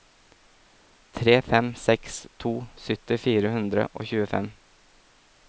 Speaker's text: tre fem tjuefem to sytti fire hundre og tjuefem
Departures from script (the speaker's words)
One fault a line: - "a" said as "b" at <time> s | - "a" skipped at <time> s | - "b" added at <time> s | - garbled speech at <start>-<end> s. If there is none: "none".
- "tjuefem" said as "seks" at 1.8 s